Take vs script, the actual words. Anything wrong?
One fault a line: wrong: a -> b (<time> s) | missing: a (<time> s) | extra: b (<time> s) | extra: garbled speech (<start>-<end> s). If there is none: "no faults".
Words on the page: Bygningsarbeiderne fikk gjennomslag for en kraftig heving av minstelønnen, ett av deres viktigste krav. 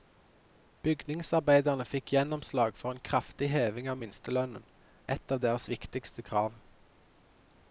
no faults